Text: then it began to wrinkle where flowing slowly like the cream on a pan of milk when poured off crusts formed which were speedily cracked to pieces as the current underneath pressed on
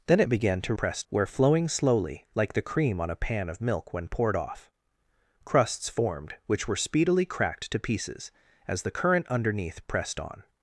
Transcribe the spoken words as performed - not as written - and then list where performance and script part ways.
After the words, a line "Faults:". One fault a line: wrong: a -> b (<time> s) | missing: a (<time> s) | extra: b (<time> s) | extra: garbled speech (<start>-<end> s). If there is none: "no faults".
then it began to pressed where flowing slowly like the cream on a pan of milk when poured off crusts formed which were speedily cracked to pieces as the current underneath pressed on
Faults:
wrong: wrinkle -> pressed (0.8 s)